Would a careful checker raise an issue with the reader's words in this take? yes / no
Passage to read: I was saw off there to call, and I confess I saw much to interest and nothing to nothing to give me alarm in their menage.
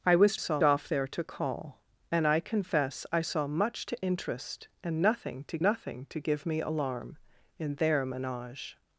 no